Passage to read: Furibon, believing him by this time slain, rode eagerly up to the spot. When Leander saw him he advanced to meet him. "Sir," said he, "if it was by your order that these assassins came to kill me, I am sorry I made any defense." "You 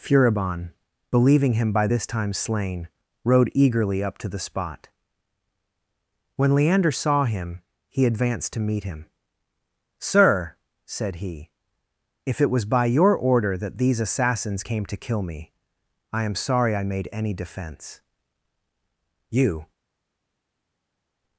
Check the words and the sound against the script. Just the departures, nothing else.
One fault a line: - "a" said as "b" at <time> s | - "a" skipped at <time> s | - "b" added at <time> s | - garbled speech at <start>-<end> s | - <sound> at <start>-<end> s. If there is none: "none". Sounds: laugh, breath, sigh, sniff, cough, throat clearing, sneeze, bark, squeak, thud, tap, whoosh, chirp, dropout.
none